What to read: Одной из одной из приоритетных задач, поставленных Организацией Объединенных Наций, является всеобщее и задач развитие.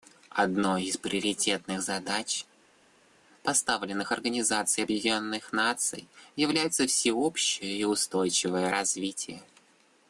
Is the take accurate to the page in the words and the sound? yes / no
no